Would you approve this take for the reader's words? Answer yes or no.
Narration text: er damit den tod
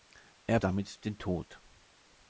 yes